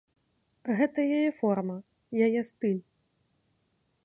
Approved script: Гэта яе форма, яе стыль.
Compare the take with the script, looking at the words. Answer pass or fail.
pass